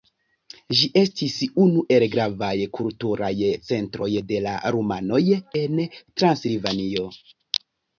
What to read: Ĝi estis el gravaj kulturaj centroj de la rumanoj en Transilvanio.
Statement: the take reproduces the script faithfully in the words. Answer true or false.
false